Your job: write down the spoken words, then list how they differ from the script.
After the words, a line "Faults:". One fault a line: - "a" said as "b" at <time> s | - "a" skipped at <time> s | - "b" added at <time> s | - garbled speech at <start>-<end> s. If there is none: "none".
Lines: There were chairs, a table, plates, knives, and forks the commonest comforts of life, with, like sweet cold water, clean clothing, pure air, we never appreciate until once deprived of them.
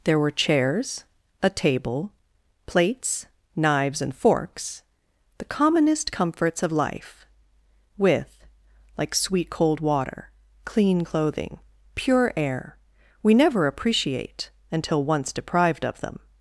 There were chairs, a table, plates, knives, and forks the commonest comforts of life, with, like sweet cold water, clean clothing, pure air, we never appreciate until once deprived of them.
Faults:
none